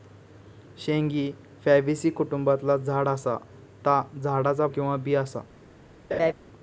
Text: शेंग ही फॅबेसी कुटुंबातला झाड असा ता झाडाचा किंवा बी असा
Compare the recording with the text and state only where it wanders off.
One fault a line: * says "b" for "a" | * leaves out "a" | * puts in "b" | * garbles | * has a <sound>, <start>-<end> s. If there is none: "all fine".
* has a laugh, 6.1-6.3 s